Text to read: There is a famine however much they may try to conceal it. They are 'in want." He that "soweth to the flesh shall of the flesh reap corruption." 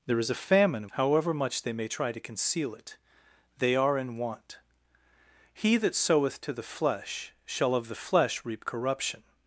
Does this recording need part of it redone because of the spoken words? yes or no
no